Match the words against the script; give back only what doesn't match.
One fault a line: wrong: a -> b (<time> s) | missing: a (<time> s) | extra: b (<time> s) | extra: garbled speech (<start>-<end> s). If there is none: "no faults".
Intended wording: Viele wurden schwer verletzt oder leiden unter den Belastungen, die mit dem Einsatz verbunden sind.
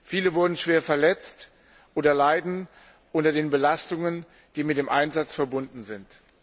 no faults